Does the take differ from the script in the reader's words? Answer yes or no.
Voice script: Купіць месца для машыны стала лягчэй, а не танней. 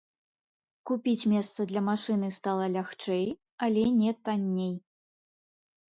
yes